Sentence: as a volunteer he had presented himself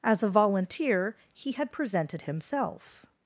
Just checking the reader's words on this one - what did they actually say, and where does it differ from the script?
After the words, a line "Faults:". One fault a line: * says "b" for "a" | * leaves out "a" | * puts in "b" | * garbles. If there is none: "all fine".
as a volunteer he had presented himself
Faults:
all fine